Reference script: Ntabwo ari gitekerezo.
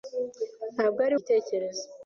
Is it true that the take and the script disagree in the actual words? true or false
false